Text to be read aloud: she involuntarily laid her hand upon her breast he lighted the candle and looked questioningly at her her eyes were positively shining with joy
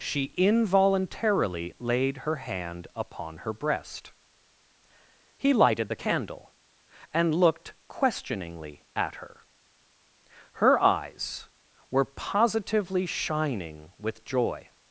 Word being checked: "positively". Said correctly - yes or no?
yes